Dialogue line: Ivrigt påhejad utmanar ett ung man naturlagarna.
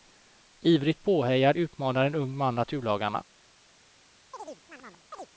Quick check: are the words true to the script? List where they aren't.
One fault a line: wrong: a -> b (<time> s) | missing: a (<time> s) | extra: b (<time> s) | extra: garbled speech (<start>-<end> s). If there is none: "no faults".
wrong: ett -> en (2.0 s)